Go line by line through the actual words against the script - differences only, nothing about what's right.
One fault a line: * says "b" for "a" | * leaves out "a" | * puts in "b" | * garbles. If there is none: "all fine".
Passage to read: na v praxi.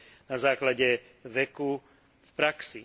* puts in "základe veku"